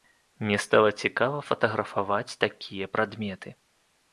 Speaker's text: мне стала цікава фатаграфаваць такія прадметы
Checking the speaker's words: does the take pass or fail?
pass